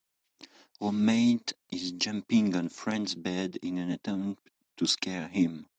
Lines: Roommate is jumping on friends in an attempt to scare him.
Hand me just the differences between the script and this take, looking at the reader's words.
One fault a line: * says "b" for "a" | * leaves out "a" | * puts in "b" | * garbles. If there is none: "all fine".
* puts in "bed"